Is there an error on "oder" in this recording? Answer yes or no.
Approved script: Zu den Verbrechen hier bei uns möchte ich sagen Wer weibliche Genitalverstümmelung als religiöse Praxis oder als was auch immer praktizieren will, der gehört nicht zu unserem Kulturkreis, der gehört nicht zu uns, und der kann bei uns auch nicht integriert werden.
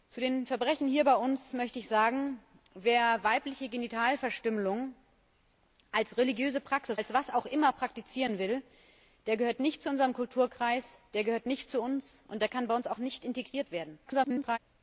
yes